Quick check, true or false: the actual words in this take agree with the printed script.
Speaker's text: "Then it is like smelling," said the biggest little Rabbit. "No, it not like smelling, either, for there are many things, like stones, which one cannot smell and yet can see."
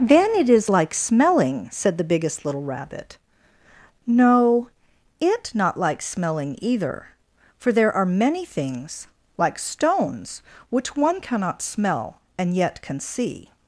true